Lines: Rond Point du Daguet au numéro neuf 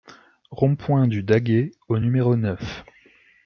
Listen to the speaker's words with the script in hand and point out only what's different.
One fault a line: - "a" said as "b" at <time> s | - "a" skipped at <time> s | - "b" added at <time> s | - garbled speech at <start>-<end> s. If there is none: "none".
none